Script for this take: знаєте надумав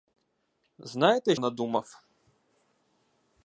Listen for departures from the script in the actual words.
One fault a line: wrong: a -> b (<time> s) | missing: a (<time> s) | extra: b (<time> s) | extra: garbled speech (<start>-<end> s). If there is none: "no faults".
no faults